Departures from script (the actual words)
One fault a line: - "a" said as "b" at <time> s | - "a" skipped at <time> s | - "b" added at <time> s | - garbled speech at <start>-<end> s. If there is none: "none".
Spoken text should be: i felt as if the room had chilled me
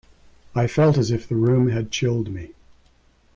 none